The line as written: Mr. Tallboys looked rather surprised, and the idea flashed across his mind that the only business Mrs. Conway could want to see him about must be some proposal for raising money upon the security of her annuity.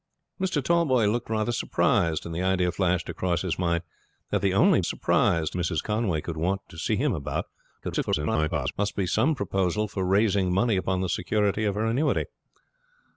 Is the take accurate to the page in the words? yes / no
no